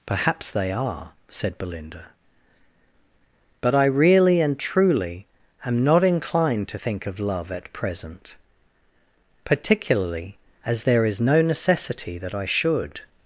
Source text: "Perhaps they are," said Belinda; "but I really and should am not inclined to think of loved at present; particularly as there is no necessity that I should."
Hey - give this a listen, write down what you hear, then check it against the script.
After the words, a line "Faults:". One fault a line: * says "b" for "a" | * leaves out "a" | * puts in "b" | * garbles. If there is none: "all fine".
"Perhaps they are," said Belinda; "but I really and truly am not inclined to think of love at present; particularly as there is no necessity that I should."
Faults:
* says "truly" for "should"
* says "love" for "loved"